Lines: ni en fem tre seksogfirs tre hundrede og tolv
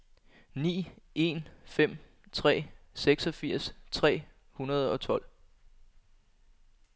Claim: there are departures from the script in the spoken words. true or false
false